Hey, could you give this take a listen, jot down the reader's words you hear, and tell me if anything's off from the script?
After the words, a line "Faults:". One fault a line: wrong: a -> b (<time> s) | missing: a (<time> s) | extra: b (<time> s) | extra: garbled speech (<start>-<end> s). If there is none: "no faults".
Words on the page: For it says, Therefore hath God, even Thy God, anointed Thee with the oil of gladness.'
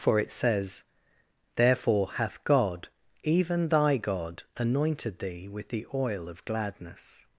For it says, Therefore hath God, even Thy God, anointed Thee with the oil of gladness.'
Faults:
no faults